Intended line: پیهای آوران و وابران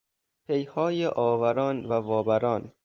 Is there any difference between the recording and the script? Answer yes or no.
no